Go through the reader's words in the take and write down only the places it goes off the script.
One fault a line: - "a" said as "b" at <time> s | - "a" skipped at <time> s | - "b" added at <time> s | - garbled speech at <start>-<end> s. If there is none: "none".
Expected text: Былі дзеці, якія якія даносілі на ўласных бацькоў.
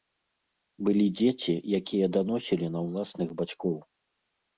- "якія" skipped at 2.0 s